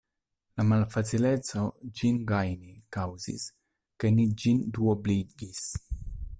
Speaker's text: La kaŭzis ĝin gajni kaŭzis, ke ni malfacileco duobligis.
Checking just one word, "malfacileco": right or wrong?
wrong